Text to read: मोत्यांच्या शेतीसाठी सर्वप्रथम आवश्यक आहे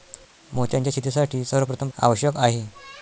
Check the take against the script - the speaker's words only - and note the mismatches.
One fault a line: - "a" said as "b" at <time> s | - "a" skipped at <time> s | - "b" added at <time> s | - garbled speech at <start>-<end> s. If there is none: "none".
none